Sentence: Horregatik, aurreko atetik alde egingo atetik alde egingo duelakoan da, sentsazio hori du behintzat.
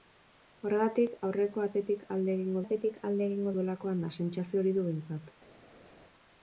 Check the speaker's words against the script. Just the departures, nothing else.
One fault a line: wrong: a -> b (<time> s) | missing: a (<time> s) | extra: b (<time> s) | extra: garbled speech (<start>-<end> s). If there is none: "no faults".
no faults